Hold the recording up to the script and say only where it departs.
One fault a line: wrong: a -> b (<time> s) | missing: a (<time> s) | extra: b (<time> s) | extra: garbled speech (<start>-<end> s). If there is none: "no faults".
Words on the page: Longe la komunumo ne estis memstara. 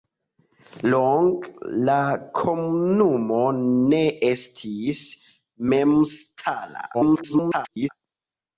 extra: garbled speech (6.9-7.9 s)